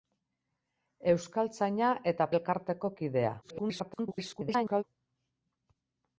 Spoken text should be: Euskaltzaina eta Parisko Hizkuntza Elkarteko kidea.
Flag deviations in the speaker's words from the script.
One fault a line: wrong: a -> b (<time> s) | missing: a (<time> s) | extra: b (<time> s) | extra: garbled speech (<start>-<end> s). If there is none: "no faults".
missing: Parisko Hizkuntza (2.3 s)
extra: garbled speech (3.4-4.8 s)